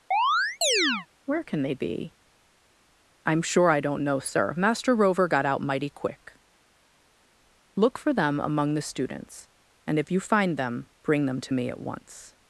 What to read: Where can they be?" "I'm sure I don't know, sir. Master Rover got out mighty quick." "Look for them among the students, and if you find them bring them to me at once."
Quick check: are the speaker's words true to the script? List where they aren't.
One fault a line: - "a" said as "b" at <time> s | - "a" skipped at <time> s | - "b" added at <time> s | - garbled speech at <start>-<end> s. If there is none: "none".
none